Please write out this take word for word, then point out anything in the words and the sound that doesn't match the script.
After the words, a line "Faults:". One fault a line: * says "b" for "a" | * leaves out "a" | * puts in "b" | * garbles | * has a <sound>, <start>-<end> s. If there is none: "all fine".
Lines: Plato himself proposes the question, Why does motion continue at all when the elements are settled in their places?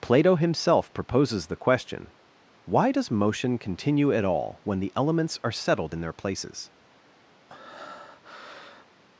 Plato himself proposes the question, Why does motion continue at all when the elements are settled in their places?
Faults:
* has a breath, 7.5-8.9 s